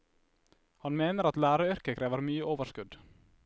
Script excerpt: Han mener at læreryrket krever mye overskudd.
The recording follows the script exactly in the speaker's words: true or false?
true